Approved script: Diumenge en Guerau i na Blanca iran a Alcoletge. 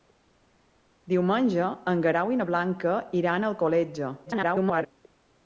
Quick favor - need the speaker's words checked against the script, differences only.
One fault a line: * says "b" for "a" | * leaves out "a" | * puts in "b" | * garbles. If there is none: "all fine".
* garbles